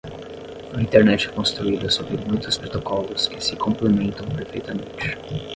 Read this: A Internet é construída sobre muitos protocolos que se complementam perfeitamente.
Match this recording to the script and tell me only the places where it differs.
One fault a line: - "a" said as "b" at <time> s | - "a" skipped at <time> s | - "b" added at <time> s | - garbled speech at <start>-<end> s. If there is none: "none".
none